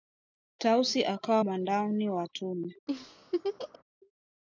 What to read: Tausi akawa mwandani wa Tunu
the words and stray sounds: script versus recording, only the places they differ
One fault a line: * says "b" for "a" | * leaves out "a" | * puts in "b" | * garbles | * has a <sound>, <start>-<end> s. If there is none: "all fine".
* has a laugh, 2.9-3.8 s